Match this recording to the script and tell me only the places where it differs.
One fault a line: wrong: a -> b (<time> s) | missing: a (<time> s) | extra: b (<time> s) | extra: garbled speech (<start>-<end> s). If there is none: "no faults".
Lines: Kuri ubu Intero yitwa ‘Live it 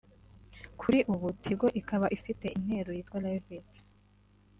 extra: Tigo ikaba ifite (1.4 s)